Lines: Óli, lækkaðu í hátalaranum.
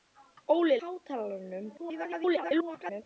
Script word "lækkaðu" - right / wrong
wrong